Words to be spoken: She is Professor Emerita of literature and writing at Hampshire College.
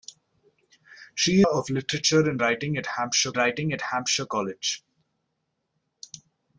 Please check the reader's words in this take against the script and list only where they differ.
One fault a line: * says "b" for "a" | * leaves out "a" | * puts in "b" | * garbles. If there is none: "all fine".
* says "of literature and writing at Hampshire" for "is Professor Emerita of literature and"